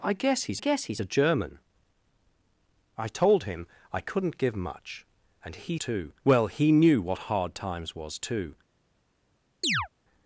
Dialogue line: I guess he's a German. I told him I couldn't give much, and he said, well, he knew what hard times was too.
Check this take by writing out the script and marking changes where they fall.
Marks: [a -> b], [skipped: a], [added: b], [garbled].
I guess he's [added: guess he's] a German. I told him I couldn't give much, and he [said, -> too] well, he knew what hard times was too.